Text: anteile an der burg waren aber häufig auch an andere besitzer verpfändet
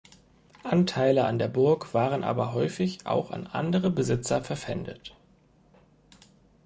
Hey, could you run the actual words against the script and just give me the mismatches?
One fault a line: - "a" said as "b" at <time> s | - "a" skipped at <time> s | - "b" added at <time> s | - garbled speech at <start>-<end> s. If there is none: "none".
none